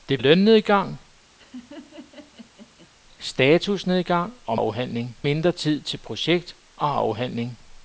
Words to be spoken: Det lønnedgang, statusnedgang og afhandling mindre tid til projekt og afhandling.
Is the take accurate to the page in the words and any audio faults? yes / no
no